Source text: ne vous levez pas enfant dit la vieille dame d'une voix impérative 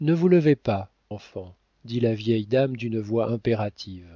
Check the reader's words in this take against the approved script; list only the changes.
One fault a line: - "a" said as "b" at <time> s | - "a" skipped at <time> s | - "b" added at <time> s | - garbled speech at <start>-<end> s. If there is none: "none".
none